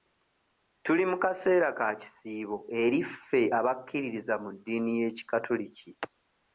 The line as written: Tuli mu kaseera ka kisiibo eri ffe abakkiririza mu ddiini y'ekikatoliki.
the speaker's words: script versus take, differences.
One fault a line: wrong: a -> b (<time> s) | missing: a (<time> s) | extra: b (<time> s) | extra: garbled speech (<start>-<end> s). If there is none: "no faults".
no faults